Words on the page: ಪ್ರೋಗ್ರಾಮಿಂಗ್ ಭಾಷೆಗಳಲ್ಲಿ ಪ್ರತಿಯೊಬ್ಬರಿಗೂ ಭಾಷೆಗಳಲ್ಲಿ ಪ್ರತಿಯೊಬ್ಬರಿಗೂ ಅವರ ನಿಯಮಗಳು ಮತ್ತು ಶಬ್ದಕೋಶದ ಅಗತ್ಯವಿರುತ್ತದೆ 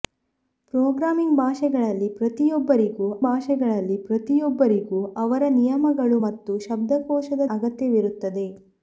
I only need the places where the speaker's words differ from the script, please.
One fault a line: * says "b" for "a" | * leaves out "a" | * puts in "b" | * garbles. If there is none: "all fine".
all fine